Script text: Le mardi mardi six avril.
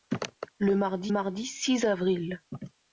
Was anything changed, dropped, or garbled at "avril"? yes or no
no